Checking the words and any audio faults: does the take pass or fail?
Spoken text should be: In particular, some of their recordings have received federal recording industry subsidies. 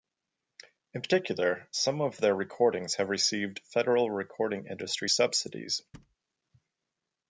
fail